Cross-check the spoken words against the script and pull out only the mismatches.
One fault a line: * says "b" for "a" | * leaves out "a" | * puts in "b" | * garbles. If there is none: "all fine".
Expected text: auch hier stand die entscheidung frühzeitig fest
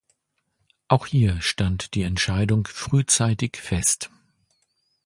all fine